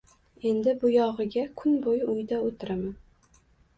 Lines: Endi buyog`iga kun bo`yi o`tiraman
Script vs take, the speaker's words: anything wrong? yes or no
yes